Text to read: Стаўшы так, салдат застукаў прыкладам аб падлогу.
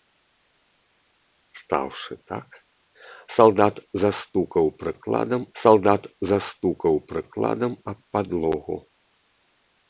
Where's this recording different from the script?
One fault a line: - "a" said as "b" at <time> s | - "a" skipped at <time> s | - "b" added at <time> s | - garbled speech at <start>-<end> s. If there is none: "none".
- "салдат застукаў прыкладам" added at 5.6 s